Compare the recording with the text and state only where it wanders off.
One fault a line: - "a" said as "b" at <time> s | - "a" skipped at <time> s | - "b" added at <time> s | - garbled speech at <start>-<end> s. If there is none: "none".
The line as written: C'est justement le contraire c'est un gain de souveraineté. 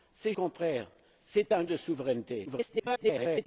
- "justement le" skipped at 0.3 s
- "gain" skipped at 1.6 s
- garbled speech at 2.5-3.5 s